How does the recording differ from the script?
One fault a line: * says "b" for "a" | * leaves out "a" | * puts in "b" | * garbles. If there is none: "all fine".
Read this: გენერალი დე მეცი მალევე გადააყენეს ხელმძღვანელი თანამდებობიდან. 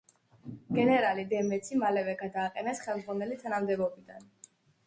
all fine